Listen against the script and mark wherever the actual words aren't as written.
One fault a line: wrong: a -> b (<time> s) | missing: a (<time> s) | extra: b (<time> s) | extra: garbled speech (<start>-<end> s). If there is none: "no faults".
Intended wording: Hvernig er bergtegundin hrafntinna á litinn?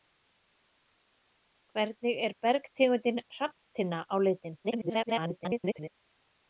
extra: garbled speech (4.6-5.9 s)